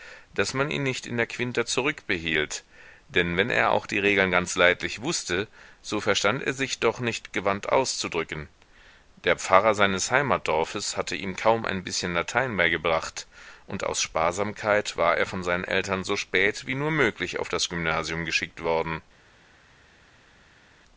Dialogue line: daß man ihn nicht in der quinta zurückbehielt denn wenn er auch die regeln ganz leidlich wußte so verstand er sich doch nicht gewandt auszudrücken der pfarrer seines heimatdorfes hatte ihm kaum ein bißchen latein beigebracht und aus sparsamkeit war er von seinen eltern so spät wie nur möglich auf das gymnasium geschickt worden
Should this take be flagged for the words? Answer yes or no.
no